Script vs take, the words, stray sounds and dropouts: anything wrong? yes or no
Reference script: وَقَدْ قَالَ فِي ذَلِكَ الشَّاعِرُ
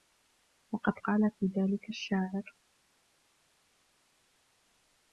no